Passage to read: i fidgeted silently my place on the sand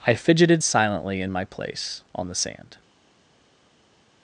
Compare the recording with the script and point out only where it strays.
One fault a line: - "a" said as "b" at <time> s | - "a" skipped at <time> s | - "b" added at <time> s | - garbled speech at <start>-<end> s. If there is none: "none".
- "in" added at 1.2 s